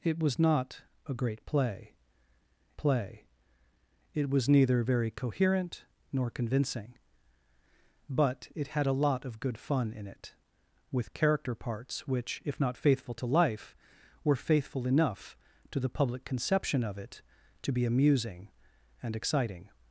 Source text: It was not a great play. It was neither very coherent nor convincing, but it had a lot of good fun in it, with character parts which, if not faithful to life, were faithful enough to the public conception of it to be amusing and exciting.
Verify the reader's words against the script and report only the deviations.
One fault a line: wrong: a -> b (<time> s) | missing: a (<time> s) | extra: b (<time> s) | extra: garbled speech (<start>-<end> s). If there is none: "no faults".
extra: play (2.8 s)